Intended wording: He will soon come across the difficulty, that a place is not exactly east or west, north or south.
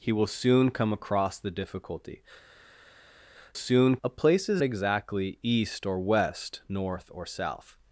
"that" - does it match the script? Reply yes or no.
no